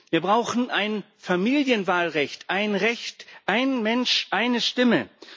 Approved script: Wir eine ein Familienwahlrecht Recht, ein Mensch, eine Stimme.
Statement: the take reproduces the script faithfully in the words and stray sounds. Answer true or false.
false